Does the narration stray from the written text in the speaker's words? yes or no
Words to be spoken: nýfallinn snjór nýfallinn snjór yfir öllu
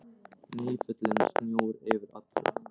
yes